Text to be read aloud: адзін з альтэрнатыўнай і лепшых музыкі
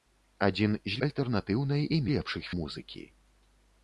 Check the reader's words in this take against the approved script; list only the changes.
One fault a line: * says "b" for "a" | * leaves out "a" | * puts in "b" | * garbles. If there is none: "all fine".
all fine